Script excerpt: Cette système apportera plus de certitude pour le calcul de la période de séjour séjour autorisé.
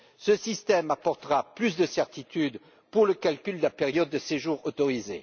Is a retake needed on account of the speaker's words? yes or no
yes